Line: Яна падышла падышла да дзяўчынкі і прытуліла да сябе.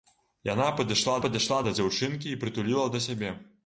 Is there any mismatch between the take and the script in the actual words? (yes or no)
no